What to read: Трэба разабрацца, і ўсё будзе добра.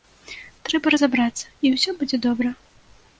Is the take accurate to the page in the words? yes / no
yes